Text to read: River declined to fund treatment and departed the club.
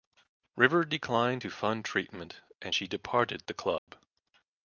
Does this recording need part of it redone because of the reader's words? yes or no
yes